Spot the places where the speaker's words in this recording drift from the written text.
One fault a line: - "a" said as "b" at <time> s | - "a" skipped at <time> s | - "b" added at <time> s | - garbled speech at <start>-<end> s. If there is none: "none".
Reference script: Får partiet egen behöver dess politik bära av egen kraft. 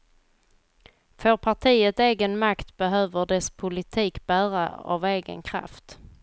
- "makt" added at 2.4 s